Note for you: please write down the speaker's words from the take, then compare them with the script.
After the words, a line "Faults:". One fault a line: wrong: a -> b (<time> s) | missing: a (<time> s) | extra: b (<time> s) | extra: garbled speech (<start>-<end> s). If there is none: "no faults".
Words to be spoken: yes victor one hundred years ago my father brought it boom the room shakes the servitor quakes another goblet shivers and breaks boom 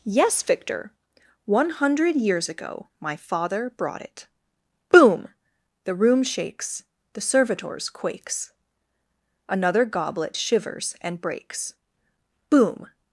yes victor one hundred years ago my father brought it boom the room shakes the servitors quakes another goblet shivers and breaks boom
Faults:
wrong: servitor -> servitors (7.2 s)